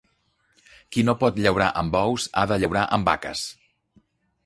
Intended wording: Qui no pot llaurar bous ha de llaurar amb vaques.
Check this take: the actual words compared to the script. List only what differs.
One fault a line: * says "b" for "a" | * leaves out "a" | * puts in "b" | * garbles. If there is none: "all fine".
* puts in "amb"